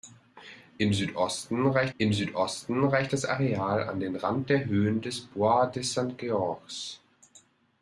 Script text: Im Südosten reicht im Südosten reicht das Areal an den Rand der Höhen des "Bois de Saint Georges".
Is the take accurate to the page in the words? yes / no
yes